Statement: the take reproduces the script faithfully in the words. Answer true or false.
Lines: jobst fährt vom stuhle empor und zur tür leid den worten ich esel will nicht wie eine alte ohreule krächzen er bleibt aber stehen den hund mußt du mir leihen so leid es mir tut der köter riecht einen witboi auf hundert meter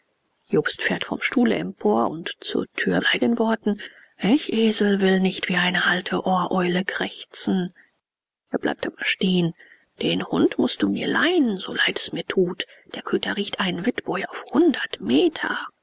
true